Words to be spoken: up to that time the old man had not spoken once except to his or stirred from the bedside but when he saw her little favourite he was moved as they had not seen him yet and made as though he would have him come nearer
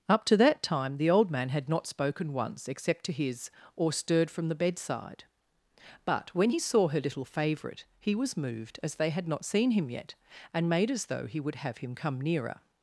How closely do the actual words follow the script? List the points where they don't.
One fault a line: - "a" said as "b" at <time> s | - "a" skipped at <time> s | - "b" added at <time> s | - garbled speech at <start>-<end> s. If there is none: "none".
none